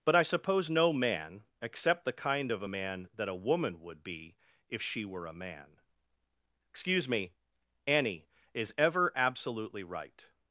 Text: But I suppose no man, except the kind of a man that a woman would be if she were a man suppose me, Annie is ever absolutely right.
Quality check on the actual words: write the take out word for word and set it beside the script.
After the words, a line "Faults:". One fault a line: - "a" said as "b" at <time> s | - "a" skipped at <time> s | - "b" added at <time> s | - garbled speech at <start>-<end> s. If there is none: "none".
But I suppose no man, except the kind of a man that a woman would be if she were a man excuse me, Annie is ever absolutely right.
Faults:
- "suppose" said as "excuse" at 6.7 s